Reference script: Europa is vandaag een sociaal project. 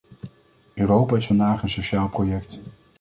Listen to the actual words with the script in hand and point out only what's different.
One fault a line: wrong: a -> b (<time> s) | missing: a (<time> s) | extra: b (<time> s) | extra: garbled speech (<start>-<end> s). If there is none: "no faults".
no faults